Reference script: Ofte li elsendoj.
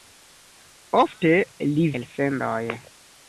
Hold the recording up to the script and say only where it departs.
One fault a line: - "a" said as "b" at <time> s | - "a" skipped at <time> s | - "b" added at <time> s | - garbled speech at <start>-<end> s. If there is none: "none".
none